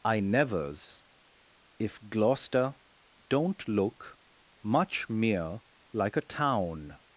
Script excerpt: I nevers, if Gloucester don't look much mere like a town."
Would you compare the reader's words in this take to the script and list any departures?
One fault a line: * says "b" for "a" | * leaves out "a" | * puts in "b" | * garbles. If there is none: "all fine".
all fine